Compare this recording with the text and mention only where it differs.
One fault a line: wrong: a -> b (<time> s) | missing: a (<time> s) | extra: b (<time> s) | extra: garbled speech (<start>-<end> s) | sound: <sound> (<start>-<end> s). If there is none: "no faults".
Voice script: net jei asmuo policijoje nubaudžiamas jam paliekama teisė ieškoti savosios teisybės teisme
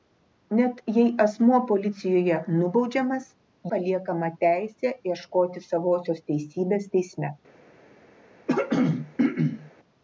missing: jam (3.3 s)
sound: throat clearing (8.5-9.7 s)